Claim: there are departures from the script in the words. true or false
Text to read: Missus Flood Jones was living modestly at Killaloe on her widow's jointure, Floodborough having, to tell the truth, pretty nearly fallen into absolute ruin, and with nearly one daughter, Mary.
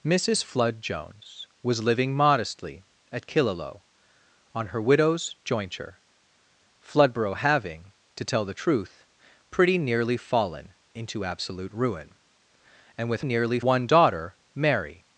false